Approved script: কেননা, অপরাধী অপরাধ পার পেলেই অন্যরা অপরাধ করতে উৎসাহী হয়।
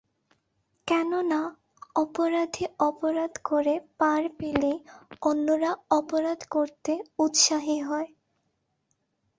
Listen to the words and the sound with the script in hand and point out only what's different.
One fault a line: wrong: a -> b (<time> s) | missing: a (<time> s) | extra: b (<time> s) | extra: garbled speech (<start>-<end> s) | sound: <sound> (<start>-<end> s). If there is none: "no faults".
extra: করে (3.4 s)